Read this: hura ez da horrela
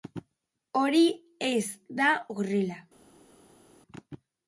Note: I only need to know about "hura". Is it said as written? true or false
false